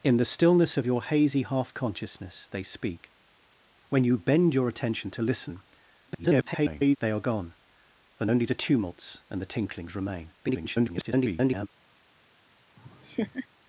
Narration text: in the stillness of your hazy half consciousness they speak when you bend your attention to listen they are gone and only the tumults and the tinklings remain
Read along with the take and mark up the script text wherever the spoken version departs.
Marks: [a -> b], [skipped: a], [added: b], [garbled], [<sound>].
in the stillness of your hazy half consciousness they speak when you bend your attention to listen [garbled] they are gone and only the tumults and the tinklings remain [garbled] [laugh]